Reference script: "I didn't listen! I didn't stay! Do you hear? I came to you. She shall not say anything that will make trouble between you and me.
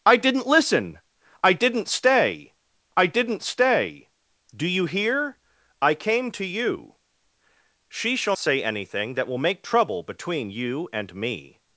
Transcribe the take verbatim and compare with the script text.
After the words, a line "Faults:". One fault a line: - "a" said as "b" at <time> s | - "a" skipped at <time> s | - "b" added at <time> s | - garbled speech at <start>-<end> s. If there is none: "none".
"I didn't listen! I didn't stay I didn't stay! Do you hear? I came to you. She shall say anything that will make trouble between you and me.
Faults:
- "I didn't stay" added at 3.0 s
- "not" skipped at 8.3 s